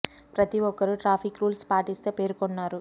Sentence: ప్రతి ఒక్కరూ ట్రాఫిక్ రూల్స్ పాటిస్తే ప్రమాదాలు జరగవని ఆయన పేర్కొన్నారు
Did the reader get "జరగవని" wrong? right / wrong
wrong